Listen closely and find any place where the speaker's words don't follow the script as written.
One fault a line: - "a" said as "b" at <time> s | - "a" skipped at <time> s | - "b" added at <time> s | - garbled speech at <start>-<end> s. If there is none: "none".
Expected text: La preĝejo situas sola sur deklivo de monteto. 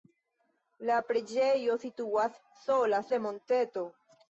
- "sur deklivo" skipped at 3.0 s